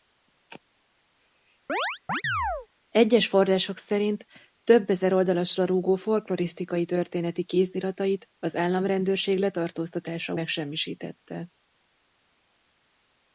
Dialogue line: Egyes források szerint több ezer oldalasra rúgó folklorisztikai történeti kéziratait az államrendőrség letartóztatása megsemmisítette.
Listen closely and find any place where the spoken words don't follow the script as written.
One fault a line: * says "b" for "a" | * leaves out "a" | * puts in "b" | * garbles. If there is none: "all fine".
all fine